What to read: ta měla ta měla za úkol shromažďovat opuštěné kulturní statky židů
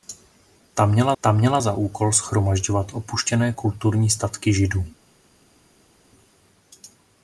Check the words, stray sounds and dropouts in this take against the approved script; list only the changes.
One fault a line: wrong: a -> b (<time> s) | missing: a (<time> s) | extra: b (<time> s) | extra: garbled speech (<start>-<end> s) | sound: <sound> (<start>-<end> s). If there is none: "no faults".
no faults